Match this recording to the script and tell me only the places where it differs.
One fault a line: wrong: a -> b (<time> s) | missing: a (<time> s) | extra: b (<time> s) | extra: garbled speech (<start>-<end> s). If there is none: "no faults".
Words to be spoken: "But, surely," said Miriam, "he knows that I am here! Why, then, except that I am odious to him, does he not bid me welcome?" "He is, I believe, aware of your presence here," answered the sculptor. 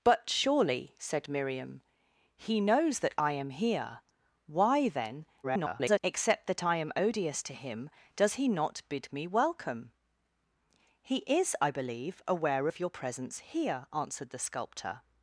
extra: garbled speech (5.4-6.0 s)